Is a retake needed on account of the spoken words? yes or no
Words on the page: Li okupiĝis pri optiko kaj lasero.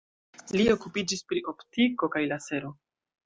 no